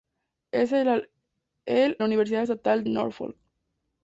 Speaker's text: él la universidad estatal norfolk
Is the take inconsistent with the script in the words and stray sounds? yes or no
no